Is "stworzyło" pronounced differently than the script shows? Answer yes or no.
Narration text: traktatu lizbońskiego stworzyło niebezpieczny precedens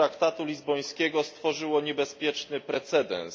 no